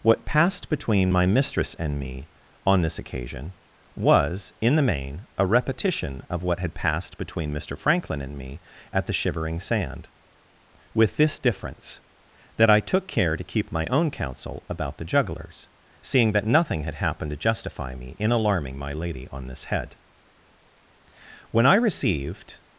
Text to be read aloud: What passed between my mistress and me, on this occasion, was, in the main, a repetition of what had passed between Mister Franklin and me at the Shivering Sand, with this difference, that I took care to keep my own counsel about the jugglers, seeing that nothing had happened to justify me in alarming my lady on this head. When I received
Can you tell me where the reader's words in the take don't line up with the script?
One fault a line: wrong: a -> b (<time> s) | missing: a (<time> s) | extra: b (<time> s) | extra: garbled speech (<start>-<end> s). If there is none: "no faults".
no faults